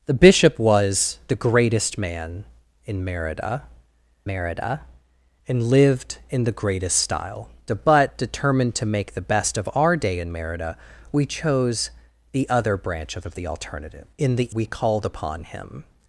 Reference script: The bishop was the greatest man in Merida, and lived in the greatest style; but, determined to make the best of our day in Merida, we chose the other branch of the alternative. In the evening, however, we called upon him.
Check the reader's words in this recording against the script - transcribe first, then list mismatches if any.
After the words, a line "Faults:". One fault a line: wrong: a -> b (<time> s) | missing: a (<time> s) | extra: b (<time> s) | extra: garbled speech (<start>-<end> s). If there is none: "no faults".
The bishop was the greatest man in Merida Merida, and lived in the greatest style; but, determined to make the best of our day in Merida, we chose the other branch of of the alternative. In the we called upon him.
Faults:
extra: Merida (4.3 s)
extra: of (13.3 s)
missing: evening however (14.6 s)